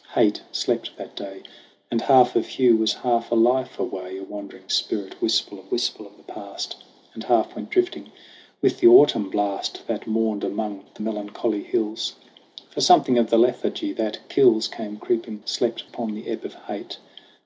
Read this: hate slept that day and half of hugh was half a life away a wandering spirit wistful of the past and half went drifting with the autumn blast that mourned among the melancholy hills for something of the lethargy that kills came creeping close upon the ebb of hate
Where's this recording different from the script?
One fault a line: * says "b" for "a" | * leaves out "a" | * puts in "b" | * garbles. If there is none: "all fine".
* puts in "wistful of"
* says "slept" for "close"